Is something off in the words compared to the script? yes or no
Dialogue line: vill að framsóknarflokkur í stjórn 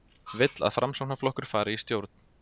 yes